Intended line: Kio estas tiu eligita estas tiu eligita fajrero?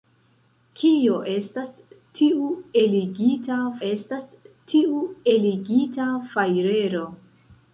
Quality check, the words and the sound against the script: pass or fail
pass